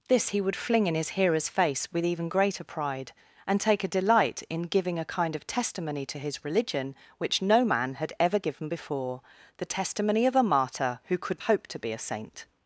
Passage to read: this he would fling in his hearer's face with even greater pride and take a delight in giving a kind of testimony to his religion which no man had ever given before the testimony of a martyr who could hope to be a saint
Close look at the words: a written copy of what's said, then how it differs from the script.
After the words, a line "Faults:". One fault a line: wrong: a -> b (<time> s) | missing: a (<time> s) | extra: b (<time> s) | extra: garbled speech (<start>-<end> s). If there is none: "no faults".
this he would fling in his hearer's face with even greater pride and take a delight in giving a kind of testimony to his religion which no man had ever given before the testimony of a martyr who could hope to be a saint
Faults:
no faults